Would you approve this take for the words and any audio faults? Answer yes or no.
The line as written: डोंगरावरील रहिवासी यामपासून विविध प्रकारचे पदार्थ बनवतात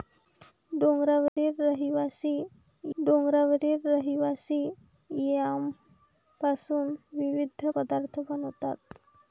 no